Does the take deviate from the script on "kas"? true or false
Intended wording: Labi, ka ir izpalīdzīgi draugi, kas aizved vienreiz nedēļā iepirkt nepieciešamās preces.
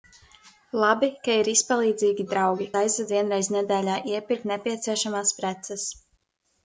true